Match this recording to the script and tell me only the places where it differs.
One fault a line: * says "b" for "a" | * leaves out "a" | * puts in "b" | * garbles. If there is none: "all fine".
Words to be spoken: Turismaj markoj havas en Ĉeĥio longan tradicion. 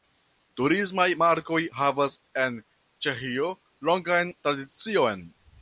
all fine